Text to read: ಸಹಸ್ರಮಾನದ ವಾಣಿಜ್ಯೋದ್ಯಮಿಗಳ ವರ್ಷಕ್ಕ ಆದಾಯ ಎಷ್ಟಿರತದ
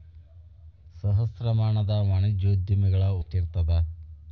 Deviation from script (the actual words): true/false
true